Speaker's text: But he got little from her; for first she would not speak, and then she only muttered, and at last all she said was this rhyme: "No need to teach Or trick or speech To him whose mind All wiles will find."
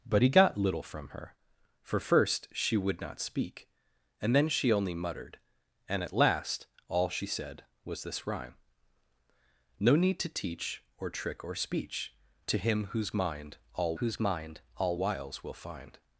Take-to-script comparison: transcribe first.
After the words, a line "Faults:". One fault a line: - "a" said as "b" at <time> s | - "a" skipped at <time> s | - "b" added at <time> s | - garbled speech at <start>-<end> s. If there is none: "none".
But he got little from her; for first she would not speak, and then she only muttered, and at last all she said was this rhyme: "No need to teach Or trick or speech To him whose mind All whose mind All wiles will find."
Faults:
- "whose mind All" added at 13.9 s